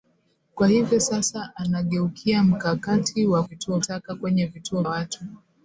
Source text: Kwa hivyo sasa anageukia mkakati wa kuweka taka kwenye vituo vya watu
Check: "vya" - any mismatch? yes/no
yes